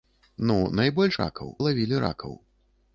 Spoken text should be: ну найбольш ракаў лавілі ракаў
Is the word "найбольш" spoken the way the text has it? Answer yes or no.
yes